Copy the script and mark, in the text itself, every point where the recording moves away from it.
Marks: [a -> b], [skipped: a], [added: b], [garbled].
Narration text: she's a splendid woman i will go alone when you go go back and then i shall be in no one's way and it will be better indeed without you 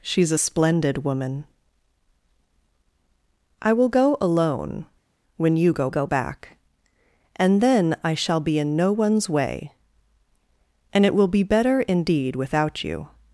she's a splendid woman i will go alone when you go go back and then i shall be in no one's way and it will be better indeed without you